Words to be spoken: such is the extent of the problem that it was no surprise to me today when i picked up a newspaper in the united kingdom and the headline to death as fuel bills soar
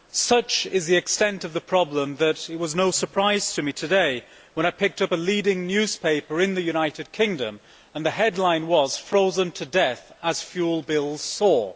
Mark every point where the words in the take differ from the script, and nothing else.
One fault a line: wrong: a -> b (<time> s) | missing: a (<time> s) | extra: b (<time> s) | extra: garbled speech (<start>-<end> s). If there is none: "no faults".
extra: leading (5.2 s)
extra: was frozen (8.7 s)